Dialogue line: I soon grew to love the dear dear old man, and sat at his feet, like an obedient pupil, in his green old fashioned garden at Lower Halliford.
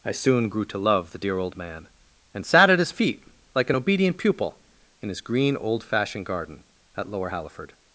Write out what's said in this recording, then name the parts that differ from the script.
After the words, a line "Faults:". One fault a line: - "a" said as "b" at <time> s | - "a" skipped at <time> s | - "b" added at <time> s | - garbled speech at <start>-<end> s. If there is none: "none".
I soon grew to love the dear old man, and sat at his feet, like an obedient pupil, in his green old fashioned garden at Lower Halliford.
Faults:
- "dear" skipped at 1.4 s